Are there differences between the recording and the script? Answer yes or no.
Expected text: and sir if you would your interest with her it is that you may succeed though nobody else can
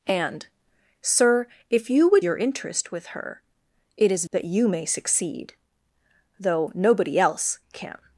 no